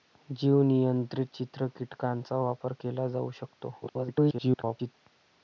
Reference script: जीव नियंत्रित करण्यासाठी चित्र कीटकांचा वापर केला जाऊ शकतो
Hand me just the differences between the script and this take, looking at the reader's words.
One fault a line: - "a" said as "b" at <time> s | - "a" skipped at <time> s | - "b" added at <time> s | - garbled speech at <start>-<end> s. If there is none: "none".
- "करण्यासाठी" skipped at 1.3 s
- garbled speech at 3.8-4.9 s